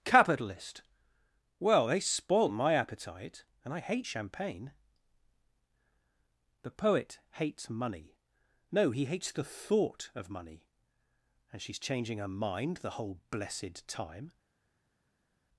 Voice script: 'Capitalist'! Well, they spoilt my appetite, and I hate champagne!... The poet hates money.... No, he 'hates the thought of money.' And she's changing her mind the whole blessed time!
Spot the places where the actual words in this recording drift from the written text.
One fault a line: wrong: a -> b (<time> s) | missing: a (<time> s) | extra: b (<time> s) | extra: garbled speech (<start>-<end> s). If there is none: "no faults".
no faults